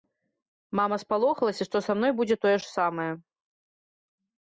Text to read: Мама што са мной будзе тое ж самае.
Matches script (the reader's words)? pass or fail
fail